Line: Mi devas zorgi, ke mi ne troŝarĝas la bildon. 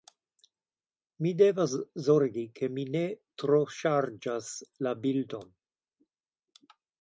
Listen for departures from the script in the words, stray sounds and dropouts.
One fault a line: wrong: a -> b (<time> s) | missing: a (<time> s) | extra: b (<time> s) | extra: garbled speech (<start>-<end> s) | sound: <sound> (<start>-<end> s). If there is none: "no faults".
no faults